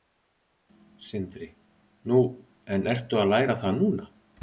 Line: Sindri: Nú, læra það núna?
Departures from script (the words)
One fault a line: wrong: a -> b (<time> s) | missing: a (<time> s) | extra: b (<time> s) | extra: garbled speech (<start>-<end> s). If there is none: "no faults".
extra: en ertu að (2.8 s)